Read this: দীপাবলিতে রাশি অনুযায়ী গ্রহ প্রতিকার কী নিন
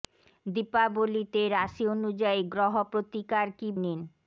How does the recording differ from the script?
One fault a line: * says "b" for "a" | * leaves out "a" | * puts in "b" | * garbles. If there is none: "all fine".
all fine